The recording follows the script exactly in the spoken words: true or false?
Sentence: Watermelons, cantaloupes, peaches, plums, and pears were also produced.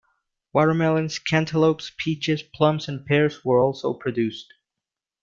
true